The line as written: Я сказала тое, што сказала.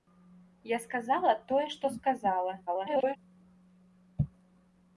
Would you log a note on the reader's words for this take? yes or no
yes